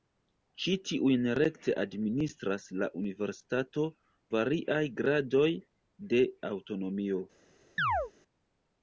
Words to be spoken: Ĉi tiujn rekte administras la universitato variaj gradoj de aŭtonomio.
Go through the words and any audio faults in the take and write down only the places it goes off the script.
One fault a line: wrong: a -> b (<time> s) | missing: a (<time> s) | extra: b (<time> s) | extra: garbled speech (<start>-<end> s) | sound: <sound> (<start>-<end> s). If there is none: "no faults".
sound: chirp (7.8-8.1 s)